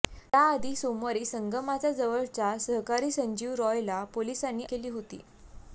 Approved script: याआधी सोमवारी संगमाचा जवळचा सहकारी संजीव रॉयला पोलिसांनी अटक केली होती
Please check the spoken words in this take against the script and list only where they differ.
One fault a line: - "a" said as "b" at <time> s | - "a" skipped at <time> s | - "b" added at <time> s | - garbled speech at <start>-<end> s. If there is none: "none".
- "अटक" skipped at 4.6 s